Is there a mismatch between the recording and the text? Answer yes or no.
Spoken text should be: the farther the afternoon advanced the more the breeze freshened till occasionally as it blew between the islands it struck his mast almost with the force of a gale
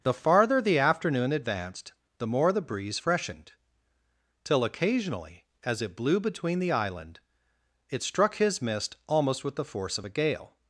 yes